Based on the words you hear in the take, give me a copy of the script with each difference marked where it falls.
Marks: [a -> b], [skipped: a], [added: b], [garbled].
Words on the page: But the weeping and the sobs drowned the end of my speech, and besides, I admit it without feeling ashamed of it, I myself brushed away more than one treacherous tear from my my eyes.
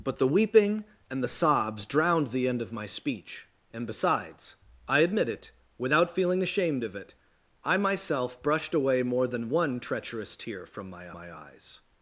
But the weeping and the sobs drowned the end of my speech, and besides, I admit it without feeling ashamed of it, I myself brushed away more than one treacherous tear from my my eyes.